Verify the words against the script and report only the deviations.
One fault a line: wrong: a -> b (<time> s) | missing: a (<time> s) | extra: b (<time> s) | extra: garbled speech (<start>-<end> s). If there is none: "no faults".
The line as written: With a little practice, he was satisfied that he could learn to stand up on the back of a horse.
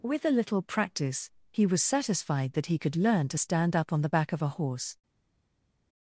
no faults